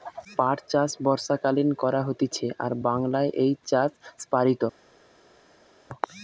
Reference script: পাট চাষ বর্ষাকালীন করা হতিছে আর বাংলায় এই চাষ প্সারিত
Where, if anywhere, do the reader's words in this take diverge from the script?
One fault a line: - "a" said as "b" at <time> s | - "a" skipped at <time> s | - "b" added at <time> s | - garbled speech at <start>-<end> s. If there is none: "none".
none